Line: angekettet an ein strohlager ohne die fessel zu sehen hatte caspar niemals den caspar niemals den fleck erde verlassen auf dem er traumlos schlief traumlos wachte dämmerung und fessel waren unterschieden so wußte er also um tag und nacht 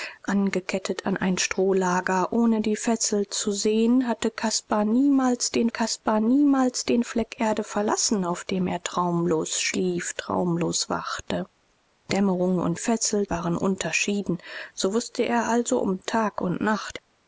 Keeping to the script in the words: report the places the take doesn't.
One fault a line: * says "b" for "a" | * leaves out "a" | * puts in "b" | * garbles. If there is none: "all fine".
all fine